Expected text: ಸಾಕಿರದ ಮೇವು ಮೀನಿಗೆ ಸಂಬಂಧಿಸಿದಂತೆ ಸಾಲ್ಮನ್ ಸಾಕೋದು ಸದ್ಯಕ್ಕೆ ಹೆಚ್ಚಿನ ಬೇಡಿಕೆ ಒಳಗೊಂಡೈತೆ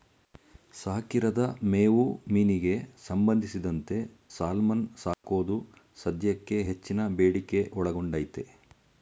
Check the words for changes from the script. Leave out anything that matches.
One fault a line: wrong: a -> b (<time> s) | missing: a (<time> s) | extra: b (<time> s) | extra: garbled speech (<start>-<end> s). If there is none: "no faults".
no faults